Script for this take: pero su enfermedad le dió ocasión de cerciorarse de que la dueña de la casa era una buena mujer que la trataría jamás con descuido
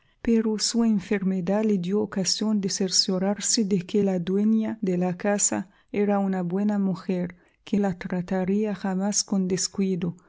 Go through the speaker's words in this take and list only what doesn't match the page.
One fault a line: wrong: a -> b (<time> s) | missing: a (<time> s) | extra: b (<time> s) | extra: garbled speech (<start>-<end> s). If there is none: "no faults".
no faults